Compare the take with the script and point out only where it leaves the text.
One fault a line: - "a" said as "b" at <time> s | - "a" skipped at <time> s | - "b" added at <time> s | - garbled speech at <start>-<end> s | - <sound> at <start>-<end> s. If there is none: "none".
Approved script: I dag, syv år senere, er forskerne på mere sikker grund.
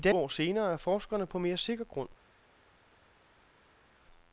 - "dag syv" skipped at 0.1 s